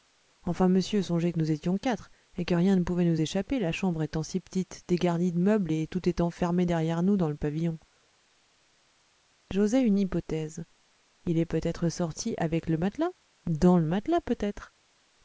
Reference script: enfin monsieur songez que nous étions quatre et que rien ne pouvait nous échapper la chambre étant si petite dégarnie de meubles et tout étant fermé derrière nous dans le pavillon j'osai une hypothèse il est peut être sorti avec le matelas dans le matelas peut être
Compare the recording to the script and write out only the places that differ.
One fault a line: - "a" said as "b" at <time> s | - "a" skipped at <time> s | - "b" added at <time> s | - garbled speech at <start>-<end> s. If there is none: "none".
none